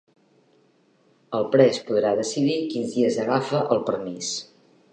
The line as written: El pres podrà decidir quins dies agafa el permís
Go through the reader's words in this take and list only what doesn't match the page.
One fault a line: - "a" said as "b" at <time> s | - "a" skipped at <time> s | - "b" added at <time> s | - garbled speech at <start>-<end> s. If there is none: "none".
none